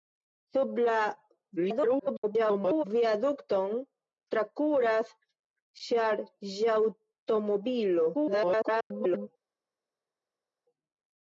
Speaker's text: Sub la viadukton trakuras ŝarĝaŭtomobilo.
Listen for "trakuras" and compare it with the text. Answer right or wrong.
right